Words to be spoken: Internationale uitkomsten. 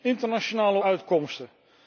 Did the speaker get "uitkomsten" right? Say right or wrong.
right